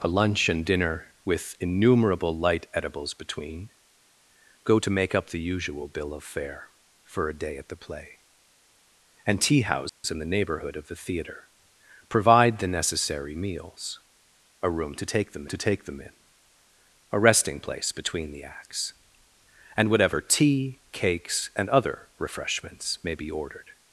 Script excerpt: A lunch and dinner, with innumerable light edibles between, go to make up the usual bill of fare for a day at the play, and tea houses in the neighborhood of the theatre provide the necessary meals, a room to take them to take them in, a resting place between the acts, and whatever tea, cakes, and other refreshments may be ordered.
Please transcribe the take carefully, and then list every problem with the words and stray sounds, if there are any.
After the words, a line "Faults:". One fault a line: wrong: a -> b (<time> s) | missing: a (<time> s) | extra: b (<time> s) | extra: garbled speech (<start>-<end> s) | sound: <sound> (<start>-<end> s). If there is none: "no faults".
A lunch and dinner, with innumerable light edibles between, go to make up the usual bill of fare for a day at the play, and tea houses in the neighborhood of the theatre provide the necessary meals, a room to take them to take them in, a resting place between the acts, and whatever tea, cakes, and other refreshments may be ordered.
Faults:
sound: dropout (9.9-10.0 s)